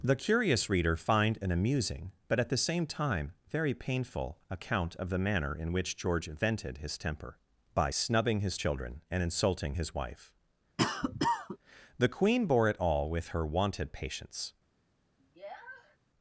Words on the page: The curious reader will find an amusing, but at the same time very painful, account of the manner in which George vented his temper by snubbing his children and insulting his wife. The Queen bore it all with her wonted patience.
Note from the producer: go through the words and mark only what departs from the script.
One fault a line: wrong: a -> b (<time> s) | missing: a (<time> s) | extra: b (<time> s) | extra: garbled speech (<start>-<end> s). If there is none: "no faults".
missing: will (1.0 s)